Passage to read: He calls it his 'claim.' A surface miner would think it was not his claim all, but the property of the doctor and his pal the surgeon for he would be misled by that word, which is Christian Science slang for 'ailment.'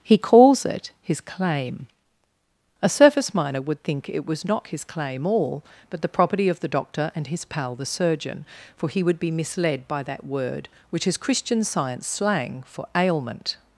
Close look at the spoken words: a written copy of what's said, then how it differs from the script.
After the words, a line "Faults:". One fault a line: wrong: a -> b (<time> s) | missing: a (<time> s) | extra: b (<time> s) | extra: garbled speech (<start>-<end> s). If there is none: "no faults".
He calls it his 'claim.' A surface miner would think it was not his claim all, but the property of the doctor and his pal the surgeon for he would be misled by that word, which is Christian Science slang for 'ailment.'
Faults:
no faults